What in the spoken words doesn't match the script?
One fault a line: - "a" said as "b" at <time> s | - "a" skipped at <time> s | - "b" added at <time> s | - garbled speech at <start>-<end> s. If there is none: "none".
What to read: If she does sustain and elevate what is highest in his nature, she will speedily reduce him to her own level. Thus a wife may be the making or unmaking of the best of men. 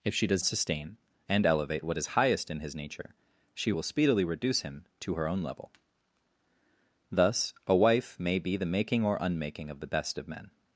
none